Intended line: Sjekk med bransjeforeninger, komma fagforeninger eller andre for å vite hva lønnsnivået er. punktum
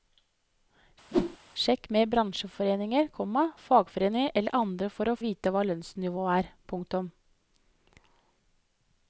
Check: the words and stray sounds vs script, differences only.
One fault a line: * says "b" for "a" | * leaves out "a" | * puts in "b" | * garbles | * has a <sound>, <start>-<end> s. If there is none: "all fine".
* has a whoosh, 1.1-1.4 s